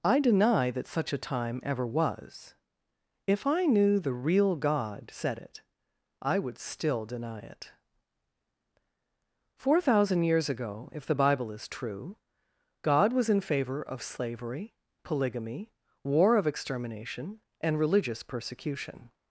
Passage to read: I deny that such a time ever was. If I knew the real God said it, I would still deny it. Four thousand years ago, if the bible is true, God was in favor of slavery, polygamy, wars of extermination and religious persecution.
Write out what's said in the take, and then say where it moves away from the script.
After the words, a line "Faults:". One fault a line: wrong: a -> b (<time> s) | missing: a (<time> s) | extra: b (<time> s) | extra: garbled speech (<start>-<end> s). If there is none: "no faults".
I deny that such a time ever was. If I knew the real God said it, I would still deny it. Four thousand years ago, if the bible is true, God was in favor of slavery, polygamy, war of extermination and religious persecution.
Faults:
wrong: wars -> war (16.0 s)